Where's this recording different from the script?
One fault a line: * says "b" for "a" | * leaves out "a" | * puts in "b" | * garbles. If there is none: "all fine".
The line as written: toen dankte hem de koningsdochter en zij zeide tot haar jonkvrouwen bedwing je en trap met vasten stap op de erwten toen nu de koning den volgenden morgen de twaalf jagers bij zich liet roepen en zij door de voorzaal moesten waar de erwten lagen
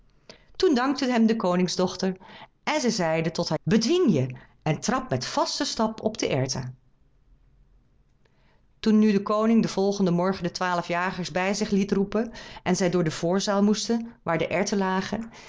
* leaves out "jonkvrouwen"